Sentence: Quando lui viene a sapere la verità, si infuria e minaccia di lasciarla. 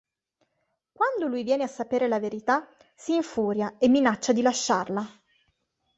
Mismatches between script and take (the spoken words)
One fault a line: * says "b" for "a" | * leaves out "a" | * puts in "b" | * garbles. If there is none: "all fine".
all fine